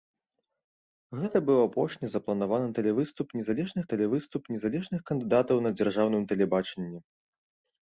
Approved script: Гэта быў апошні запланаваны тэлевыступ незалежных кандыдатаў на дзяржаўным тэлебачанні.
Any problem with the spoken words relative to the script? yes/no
yes